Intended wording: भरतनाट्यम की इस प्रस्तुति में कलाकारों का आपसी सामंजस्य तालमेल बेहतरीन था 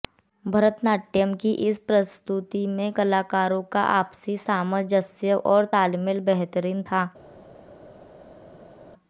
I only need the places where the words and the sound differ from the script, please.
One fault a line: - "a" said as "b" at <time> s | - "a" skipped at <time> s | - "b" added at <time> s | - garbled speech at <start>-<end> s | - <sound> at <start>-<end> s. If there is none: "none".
- "और" added at 5.5 s